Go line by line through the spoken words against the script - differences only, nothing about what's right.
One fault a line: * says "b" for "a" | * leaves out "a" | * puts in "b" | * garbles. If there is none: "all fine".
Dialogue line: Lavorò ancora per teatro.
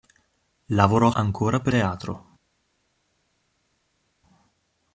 all fine